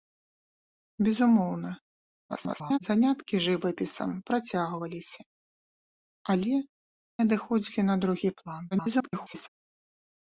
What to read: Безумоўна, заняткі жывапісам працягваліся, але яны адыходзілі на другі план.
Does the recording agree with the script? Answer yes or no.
no